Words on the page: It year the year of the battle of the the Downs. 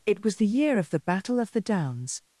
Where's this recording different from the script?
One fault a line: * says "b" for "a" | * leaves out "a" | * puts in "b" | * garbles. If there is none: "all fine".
* says "was" for "year"
* leaves out "the"